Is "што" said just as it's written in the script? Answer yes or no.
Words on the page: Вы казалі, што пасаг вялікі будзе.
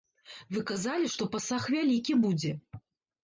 yes